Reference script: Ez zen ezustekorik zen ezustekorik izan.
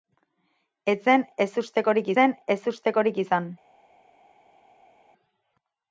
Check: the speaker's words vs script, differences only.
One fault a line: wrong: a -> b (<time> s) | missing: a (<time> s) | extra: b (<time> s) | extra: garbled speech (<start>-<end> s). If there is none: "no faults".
no faults